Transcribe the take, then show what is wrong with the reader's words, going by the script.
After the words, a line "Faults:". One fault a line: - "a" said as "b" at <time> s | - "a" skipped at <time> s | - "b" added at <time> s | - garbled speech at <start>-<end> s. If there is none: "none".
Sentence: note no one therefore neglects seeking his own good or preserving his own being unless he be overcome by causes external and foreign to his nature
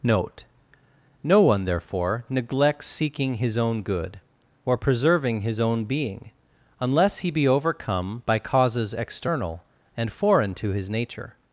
note no one therefore neglects seeking his own good or preserving his own being unless he be overcome by causes external and foreign to his nature
Faults:
none